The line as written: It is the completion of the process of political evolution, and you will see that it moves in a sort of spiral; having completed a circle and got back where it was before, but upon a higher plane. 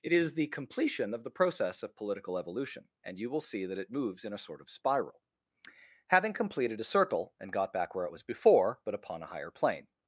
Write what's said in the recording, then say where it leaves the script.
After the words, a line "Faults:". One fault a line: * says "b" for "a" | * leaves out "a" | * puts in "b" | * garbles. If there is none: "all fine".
It is the completion of the process of political evolution, and you will see that it moves in a sort of spiral; having completed a circle and got back where it was before, but upon a higher plane.
Faults:
all fine